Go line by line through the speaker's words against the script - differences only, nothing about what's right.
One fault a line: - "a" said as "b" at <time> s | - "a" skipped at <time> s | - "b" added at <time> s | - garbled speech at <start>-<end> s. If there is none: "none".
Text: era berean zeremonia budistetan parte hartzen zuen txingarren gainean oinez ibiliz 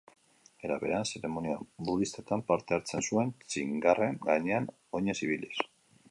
none